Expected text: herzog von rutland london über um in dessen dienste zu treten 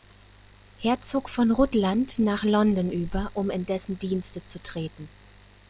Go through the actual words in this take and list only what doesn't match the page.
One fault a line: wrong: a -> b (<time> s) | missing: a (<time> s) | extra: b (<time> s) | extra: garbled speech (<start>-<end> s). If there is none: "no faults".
extra: nach (2.2 s)